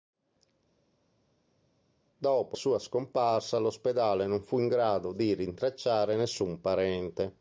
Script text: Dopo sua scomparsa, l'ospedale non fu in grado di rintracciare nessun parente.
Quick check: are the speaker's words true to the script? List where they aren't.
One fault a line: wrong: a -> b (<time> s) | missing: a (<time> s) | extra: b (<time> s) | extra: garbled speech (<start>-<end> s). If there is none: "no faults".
no faults